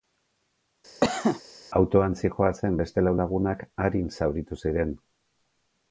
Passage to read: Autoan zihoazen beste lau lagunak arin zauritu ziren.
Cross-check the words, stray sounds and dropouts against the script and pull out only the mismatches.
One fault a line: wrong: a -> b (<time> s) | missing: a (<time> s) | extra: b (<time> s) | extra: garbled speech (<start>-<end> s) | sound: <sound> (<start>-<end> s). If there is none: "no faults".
sound: cough (1.0-1.4 s)